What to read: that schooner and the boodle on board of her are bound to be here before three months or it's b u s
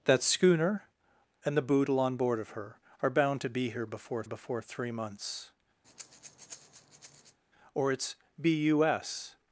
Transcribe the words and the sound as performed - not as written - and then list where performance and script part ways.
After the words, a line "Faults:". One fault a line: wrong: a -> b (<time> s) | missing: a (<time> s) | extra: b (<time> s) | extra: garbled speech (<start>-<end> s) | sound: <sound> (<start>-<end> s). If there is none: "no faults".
that schooner and the boodle on board of her are bound to be here before before three months or it's b u s
Faults:
extra: before (4.2 s)
sound: breath (5.8-7.4 s)